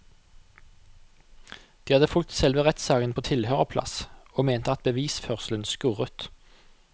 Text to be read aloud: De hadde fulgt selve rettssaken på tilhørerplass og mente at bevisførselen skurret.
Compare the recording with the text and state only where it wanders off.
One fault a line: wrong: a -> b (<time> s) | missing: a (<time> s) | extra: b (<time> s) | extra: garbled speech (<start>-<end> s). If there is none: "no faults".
no faults